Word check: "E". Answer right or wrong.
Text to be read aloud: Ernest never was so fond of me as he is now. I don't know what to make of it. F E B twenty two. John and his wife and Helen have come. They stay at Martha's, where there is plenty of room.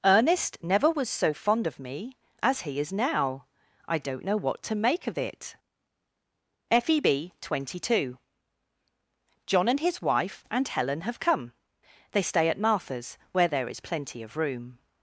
right